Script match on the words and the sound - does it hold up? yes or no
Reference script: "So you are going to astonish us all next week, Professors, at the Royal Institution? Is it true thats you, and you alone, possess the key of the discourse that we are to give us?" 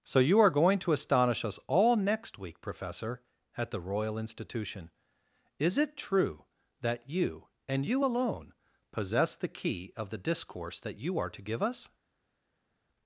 no